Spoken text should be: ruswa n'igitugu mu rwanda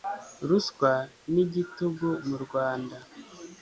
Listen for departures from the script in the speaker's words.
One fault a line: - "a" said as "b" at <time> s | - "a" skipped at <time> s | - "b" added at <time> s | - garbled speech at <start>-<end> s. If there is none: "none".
none